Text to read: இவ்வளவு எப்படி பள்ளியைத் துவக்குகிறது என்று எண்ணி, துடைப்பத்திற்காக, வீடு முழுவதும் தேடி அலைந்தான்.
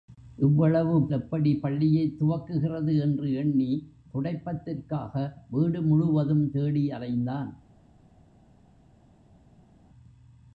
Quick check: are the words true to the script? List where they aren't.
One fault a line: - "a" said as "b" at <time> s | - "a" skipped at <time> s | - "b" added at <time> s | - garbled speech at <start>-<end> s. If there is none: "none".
none